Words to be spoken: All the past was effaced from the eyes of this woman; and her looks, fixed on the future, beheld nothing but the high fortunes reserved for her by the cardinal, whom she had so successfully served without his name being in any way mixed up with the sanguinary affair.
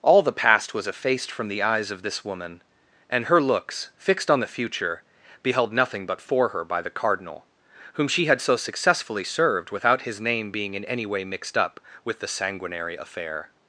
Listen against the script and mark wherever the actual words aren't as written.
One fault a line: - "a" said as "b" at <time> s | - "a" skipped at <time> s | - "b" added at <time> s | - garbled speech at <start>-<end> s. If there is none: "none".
- "the high fortunes reserved" skipped at 6.2 s